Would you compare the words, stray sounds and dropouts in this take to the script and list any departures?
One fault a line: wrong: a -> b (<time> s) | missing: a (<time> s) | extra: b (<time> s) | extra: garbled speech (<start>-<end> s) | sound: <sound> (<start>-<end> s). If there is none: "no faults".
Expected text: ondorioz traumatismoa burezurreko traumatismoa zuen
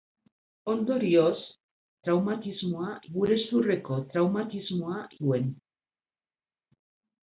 no faults